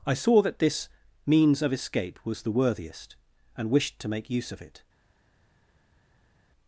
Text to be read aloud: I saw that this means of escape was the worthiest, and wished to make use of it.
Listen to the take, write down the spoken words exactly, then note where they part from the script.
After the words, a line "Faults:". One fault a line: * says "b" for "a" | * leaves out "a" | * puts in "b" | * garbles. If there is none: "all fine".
I saw that this means of escape was the worthiest, and wished to make use of it.
Faults:
all fine